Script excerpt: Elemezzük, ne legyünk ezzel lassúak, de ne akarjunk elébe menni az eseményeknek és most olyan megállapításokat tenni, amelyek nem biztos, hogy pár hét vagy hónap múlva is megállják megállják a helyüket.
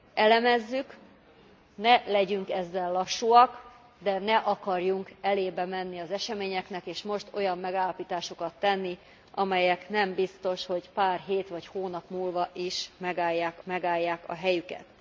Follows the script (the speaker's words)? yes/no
yes